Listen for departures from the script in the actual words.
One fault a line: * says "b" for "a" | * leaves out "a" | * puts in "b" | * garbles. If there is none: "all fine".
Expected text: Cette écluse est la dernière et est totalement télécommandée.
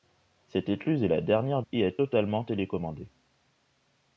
all fine